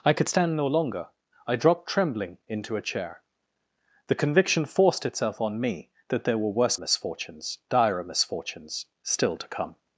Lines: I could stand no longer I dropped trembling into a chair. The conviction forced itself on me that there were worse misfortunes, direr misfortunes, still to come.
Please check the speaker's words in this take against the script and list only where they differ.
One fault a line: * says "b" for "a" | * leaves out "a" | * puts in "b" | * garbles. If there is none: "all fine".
all fine